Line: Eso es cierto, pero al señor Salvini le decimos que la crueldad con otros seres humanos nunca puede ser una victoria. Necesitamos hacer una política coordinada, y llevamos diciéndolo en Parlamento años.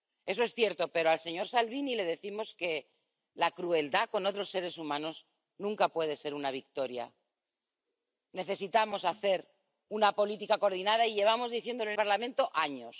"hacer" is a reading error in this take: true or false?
false